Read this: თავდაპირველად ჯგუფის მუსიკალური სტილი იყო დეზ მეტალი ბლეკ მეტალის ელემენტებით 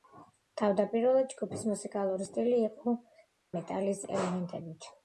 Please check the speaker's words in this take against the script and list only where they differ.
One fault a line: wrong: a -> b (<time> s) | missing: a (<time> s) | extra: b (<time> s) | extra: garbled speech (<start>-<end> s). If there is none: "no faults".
missing: დეზ მეტალი ბლეკ (3.0 s)